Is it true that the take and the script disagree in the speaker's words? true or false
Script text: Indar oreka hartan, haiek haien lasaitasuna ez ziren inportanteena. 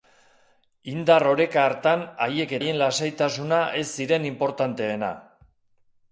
false